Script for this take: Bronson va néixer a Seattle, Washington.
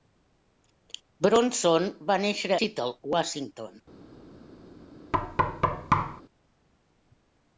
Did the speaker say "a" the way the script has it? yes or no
no